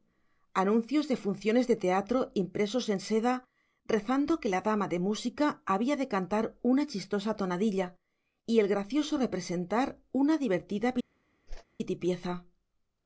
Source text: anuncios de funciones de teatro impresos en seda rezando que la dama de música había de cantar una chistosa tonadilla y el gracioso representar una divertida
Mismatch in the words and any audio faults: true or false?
true